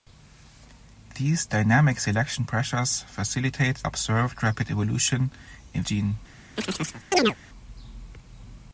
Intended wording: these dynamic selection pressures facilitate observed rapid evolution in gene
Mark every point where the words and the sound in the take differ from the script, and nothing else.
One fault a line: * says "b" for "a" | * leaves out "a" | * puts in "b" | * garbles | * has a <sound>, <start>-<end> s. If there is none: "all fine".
* has a chirp, 6.6-7.4 s